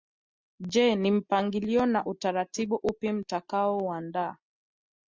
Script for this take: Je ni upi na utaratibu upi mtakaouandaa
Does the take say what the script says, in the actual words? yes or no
no